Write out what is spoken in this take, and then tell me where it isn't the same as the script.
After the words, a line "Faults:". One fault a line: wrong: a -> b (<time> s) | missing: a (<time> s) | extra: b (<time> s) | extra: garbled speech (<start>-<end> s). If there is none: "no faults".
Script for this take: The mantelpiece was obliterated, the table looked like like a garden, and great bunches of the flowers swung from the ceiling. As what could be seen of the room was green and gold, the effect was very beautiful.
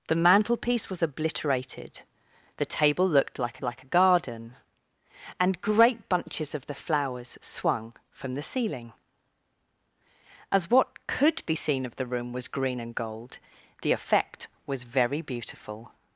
The mantelpiece was obliterated, the table looked like like a garden, and great bunches of the flowers swung from the ceiling. As what could be seen of the room was green and gold, the effect was very beautiful.
Faults:
no faults